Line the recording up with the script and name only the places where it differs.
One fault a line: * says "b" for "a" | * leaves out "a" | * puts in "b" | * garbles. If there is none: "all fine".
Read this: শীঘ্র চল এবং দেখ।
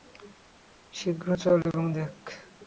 all fine